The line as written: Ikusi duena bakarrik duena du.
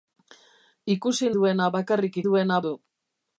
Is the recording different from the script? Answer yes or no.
no